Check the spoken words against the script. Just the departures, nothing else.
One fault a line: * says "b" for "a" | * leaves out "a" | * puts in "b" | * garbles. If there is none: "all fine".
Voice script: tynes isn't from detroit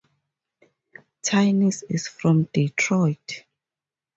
* says "is" for "isn't"